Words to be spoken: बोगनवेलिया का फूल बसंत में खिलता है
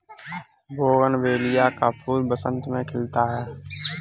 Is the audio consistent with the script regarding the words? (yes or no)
yes